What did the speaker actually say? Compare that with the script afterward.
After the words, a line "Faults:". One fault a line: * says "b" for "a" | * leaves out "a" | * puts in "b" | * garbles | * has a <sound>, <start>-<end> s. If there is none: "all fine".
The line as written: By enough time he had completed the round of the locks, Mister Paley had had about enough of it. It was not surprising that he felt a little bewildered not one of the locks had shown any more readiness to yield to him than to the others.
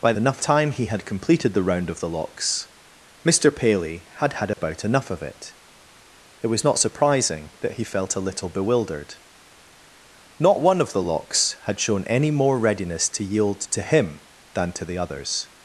By enough time he had completed the round of the locks, Mister Paley had had about enough of it. It was not surprising that he felt a little bewildered not one of the locks had shown any more readiness to yield to him than to the others.
Faults:
* has a dropout, 4.5-4.6 s